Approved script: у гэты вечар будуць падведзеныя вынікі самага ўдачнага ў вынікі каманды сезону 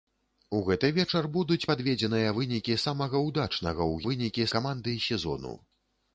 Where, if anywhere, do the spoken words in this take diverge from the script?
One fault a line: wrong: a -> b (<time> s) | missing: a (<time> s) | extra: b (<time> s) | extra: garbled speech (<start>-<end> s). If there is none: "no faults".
no faults